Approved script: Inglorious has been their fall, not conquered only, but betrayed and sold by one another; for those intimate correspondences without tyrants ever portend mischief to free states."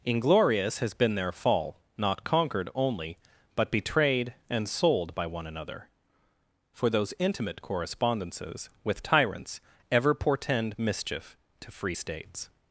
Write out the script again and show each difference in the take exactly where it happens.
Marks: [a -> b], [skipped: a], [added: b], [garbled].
Inglorious has been their fall, not conquered only, but betrayed and sold by one another; for those intimate correspondences [without -> with] tyrants ever portend mischief to free states."